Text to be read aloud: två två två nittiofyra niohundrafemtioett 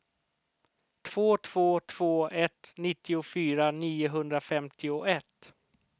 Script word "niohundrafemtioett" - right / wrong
right